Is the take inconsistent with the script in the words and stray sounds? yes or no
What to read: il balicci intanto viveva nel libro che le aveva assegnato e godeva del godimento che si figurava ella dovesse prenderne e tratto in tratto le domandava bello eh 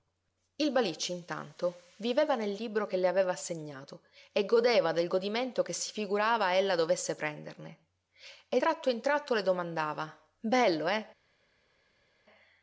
no